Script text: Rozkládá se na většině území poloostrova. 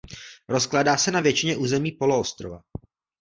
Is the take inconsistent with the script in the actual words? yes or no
no